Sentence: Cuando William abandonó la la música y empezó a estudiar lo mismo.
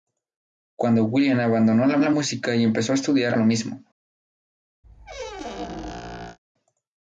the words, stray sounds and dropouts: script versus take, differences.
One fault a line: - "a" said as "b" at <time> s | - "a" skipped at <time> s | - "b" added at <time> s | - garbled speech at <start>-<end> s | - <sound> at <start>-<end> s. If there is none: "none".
- squeak at 4.8-6.4 s